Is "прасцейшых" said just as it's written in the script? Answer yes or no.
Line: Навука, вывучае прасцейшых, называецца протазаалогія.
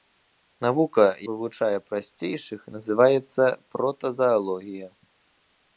yes